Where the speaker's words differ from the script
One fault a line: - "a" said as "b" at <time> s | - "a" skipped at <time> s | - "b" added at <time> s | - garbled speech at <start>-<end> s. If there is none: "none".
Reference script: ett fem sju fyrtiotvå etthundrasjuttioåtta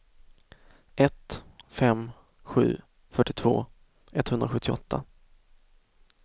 none